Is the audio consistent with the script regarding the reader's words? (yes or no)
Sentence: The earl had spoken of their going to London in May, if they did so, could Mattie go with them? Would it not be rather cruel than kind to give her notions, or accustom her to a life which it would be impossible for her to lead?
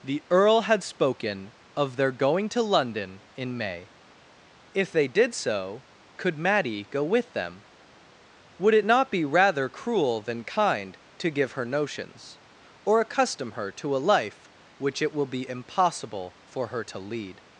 no